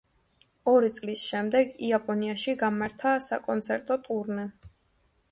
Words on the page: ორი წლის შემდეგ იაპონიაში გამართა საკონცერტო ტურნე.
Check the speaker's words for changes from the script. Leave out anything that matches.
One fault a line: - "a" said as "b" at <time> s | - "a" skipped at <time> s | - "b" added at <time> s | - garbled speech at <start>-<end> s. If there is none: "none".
none